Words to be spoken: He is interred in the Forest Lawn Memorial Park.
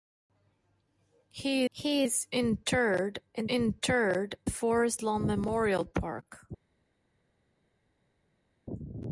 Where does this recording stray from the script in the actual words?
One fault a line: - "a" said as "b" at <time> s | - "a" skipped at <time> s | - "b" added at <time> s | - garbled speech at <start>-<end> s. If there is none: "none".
- "he" added at 1.7 s
- "the" said as "interred" at 3.5 s